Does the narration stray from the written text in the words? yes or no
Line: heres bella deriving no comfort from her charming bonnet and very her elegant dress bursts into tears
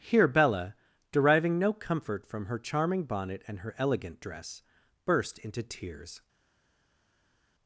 yes